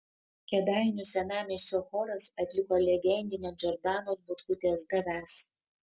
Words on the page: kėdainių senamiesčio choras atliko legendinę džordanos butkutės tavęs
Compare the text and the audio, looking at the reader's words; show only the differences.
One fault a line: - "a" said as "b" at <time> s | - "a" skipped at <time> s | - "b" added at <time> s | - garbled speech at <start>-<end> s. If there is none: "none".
none